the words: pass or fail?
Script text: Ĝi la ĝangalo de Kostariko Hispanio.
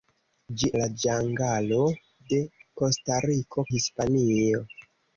pass